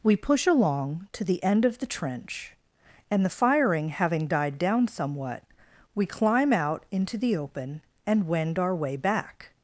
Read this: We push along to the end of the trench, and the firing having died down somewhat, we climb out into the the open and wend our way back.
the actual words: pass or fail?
fail